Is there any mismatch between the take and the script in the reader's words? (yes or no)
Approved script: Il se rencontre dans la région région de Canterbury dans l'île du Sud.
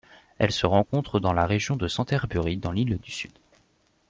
yes